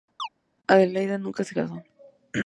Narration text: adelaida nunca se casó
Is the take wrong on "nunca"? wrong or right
right